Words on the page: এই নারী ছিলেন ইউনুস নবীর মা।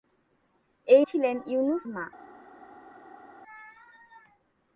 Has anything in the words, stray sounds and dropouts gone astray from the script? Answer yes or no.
yes